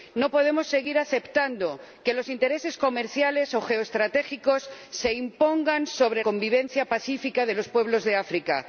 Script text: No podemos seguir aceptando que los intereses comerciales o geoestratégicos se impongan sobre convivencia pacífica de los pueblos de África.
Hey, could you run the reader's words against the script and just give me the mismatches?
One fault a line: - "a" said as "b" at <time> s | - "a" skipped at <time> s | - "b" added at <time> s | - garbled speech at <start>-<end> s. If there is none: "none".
none